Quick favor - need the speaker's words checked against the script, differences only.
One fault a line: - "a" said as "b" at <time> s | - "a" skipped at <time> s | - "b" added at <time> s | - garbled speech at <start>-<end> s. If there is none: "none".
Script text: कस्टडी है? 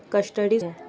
none